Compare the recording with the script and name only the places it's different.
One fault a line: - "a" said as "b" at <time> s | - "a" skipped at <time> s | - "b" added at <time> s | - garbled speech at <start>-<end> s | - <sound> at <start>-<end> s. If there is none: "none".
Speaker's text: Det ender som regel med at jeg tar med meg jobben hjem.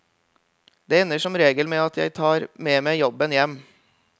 none